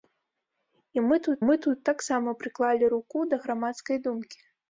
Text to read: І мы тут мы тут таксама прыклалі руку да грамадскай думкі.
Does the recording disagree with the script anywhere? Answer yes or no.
no